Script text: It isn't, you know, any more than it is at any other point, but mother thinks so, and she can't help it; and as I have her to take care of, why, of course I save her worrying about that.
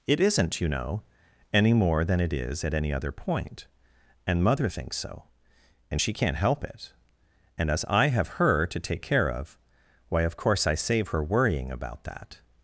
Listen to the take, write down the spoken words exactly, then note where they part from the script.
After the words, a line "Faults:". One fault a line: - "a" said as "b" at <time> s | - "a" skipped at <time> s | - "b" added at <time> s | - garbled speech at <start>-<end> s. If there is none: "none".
It isn't, you know, any more than it is at any other point, and mother thinks so, and she can't help it; and as I have her to take care of, why, of course I save her worrying about that.
Faults:
- "but" said as "and" at 4.2 s